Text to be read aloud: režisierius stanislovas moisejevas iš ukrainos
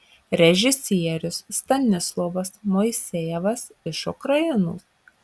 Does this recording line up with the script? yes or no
yes